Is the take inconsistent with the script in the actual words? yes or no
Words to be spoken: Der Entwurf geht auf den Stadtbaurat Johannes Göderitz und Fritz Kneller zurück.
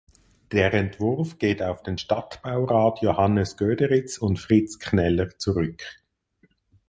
no